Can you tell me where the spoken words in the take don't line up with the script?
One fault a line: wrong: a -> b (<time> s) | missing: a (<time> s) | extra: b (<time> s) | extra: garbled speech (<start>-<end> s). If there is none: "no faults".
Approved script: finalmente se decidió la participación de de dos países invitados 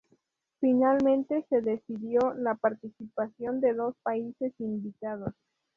missing: de (3.8 s)